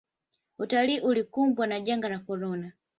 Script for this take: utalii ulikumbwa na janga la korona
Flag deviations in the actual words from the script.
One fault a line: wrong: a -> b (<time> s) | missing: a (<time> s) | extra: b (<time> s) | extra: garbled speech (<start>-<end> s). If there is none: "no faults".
no faults